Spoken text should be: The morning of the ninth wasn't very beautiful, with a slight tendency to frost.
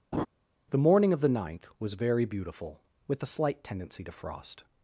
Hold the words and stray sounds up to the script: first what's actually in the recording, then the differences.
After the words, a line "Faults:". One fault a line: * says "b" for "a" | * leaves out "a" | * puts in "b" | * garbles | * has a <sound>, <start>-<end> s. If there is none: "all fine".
The morning of the ninth was very beautiful, with a slight tendency to frost.
Faults:
* has a laugh, 0.1-0.3 s
* says "was" for "wasn't"